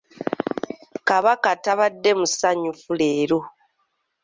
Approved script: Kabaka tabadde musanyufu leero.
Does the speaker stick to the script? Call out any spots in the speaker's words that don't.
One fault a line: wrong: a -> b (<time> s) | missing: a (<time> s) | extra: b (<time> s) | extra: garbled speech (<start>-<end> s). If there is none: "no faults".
no faults